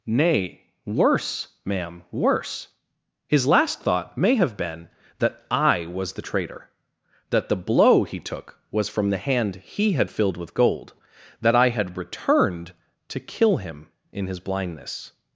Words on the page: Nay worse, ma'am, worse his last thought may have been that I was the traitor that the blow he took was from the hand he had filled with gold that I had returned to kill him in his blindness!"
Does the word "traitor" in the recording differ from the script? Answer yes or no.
no